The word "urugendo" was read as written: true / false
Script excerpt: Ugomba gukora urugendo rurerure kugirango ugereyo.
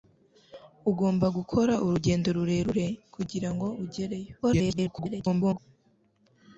true